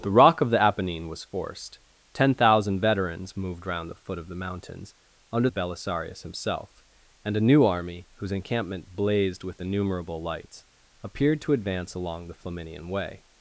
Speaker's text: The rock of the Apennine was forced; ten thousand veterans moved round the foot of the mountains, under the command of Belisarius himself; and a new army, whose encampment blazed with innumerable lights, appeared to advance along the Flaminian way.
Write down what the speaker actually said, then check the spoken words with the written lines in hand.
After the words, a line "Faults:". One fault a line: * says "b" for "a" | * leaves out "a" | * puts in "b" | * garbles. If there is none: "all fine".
The rock of the Apennine was forced; ten thousand veterans moved round the foot of the mountains, under of Belisarius himself; and a new army, whose encampment blazed with innumerable lights, appeared to advance along the Flaminian way.
Faults:
* leaves out "the command"